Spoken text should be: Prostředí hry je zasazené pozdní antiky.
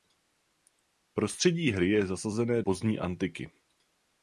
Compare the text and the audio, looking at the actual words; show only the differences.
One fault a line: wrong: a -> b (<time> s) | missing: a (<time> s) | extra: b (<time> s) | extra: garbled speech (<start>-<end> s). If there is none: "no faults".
no faults